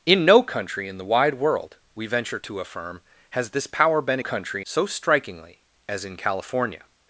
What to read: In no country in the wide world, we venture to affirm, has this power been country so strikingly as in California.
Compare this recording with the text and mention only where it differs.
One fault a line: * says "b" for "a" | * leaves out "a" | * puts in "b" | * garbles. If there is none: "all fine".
all fine